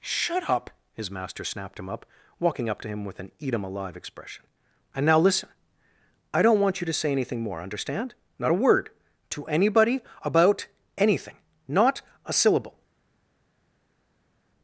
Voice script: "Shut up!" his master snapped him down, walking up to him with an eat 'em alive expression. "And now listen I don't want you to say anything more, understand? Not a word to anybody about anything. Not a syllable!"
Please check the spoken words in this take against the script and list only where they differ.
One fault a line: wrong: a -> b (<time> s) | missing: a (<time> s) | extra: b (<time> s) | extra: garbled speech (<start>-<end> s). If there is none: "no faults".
wrong: down -> up (1.9 s)